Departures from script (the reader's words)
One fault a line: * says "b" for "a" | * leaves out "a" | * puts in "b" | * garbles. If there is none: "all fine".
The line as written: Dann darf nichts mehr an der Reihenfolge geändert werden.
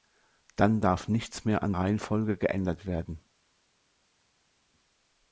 * leaves out "der"